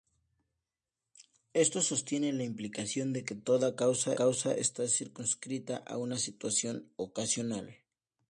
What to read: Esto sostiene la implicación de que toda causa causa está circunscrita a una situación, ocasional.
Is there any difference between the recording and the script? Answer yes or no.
no